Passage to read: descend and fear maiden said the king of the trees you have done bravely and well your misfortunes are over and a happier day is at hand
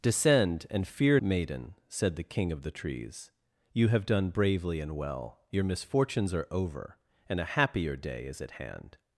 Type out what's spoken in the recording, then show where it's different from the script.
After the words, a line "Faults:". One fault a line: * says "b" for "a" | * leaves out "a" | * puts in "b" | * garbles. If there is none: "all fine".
descend and fear maiden said the king of the trees you have done bravely and well your misfortunes are over and a happier day is at hand
Faults:
all fine